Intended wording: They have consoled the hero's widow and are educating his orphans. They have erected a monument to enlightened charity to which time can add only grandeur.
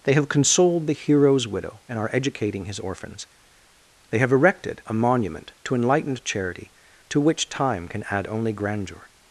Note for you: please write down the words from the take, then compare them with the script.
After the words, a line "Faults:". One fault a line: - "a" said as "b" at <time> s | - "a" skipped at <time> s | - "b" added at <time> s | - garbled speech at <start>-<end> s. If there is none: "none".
They have consoled the hero's widow and are educating his orphans. They have erected a monument to enlightened charity to which time can add only grandeur.
Faults:
none